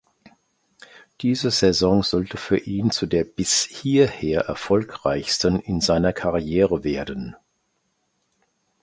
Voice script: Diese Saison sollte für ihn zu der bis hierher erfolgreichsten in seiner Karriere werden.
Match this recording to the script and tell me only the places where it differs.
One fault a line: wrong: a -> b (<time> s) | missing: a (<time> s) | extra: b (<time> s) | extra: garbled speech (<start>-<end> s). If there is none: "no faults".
no faults